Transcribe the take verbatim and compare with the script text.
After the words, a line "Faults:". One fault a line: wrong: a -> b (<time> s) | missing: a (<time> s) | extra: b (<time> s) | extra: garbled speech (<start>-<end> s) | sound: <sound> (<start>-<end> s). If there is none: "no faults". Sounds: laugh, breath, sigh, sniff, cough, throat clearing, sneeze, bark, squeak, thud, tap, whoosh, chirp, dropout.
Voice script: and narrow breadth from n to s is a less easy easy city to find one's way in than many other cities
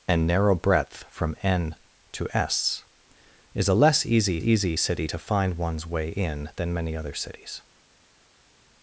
and narrow breadth from n to s is a less easy easy city to find one's way in than many other cities
Faults:
no faults